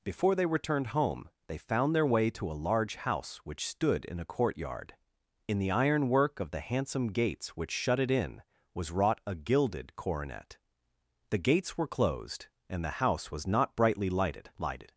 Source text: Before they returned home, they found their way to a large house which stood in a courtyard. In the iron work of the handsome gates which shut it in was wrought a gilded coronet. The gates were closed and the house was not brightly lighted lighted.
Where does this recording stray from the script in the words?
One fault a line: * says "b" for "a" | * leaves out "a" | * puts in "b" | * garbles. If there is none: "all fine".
all fine